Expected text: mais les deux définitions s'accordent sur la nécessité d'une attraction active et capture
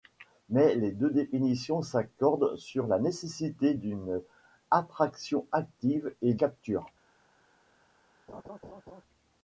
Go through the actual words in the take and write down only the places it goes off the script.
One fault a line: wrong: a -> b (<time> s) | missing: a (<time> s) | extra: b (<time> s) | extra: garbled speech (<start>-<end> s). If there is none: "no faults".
no faults